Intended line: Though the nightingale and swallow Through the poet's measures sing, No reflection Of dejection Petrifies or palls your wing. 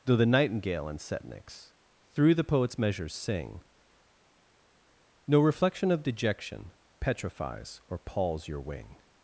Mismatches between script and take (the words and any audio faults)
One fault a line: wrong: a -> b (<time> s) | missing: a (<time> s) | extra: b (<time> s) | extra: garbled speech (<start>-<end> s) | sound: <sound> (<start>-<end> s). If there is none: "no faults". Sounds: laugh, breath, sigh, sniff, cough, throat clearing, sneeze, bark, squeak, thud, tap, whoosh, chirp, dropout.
wrong: swallow -> setniks (1.0 s)